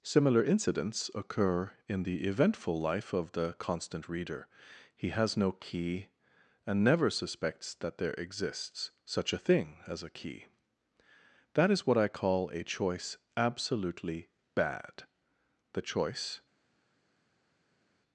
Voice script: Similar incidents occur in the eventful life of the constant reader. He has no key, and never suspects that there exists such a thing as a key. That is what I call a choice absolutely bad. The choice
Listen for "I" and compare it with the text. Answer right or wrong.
right